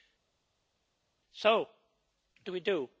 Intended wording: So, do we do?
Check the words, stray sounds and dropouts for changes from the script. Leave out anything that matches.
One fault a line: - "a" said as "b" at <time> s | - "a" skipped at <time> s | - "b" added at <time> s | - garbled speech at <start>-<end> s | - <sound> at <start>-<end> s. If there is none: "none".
none